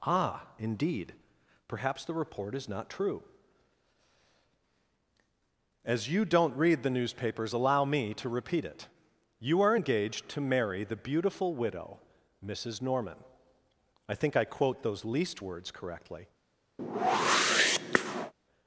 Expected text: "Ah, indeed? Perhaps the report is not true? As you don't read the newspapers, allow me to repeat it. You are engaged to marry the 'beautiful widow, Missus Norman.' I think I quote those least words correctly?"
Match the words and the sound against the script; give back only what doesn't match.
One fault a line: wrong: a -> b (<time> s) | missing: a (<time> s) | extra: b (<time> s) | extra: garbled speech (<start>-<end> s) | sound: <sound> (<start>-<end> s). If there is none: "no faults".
sound: whoosh (16.8-18.3 s)